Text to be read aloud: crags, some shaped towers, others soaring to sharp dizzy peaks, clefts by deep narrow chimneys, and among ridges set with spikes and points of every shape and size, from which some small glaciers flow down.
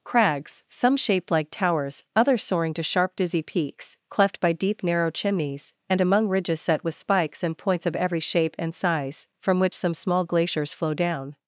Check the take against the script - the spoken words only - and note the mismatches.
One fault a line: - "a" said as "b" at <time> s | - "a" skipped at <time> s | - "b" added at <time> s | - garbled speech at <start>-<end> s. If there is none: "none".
- "like" added at 1.3 s
- "clefts" said as "cleft" at 4.1 s